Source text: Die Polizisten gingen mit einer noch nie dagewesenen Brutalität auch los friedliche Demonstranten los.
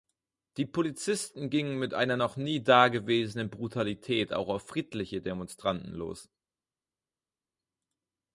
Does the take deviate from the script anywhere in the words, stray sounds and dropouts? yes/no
yes